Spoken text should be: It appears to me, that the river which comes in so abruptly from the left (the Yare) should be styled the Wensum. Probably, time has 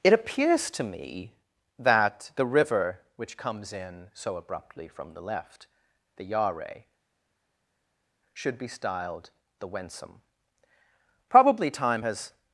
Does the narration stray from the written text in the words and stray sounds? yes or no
no